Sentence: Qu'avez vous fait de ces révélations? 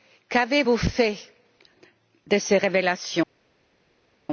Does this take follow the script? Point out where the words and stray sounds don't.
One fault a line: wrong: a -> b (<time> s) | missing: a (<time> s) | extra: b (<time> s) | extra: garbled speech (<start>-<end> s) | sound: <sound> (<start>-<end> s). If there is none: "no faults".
no faults